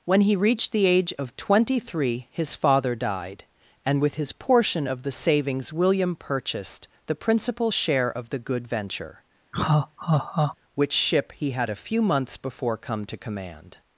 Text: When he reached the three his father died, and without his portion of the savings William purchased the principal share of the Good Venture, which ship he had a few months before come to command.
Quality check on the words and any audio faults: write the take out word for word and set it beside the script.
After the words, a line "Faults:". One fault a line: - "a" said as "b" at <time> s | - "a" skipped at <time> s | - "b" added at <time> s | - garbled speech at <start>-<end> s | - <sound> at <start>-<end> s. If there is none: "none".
When he reached the age of twenty three his father died, and with his portion of the savings William purchased the principal share of the Good Venture, which ship he had a few months before come to command.
Faults:
- "age of twenty" added at 0.9 s
- "without" said as "with" at 4.0 s
- laugh at 9.5-10.6 s